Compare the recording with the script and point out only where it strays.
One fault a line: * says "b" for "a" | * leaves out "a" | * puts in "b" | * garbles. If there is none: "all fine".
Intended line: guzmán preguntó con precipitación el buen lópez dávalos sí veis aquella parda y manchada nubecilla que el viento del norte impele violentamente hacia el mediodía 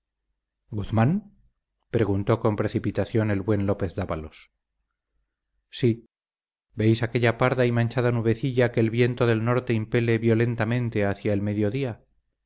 all fine